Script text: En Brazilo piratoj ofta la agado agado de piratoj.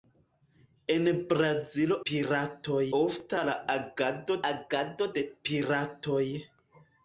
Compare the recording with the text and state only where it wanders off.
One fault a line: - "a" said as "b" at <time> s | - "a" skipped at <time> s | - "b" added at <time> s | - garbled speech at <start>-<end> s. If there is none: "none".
none